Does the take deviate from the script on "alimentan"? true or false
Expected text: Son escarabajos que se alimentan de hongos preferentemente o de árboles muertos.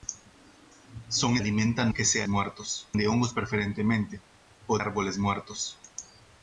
true